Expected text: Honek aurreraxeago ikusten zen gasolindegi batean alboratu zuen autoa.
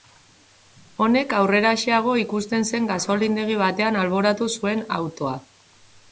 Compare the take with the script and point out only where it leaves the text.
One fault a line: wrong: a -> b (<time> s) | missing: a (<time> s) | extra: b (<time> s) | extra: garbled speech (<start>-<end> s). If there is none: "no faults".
no faults